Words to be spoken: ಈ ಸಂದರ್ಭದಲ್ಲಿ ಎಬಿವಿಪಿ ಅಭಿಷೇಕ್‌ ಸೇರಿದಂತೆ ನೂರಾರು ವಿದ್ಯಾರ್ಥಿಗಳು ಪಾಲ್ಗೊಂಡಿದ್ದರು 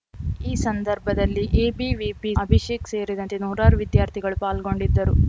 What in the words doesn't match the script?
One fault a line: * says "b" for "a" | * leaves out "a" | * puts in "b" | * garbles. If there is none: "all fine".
all fine